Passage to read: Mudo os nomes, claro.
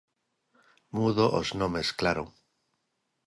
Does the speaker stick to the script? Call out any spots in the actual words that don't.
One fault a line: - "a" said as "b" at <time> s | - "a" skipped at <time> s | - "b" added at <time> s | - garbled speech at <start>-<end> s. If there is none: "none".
none